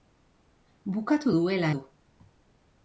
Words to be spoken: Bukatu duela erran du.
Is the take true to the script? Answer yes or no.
no